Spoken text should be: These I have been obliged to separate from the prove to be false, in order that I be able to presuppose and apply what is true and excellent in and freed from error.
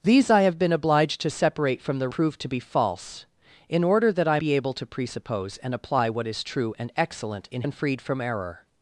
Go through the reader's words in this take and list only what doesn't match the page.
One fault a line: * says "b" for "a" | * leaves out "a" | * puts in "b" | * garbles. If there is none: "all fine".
all fine